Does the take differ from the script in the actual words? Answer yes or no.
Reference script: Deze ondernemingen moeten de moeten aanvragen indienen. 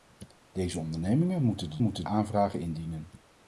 no